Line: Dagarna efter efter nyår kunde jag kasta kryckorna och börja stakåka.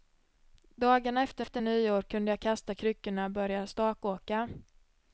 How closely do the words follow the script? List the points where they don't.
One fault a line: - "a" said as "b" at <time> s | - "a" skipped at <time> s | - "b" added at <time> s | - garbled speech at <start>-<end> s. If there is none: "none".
none